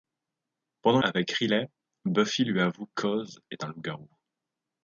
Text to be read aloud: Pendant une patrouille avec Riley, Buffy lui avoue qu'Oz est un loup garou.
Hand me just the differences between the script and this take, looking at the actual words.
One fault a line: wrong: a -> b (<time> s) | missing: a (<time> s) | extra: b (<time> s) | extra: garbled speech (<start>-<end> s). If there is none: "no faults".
missing: une patrouille (1.0 s)